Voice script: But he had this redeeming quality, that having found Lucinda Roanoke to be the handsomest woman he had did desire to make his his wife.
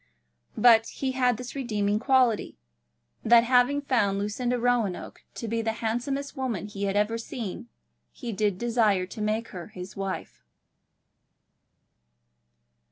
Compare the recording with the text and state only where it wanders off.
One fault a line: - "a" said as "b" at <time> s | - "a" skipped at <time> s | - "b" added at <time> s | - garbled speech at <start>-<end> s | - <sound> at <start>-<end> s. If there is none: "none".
- "ever seen he" added at 7.0 s
- "his" said as "her" at 9.5 s